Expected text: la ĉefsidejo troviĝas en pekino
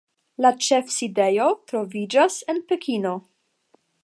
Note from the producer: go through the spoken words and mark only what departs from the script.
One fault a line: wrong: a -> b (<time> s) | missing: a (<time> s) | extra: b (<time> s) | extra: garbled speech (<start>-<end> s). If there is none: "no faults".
no faults